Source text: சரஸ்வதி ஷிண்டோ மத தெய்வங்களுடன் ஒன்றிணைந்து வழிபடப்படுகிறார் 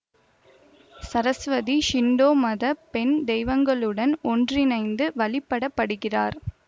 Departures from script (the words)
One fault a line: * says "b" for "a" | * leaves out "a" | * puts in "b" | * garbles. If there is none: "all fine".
* puts in "பெண்"